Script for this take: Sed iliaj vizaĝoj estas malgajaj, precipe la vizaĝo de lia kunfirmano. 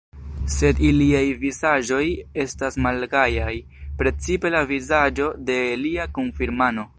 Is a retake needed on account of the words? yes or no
no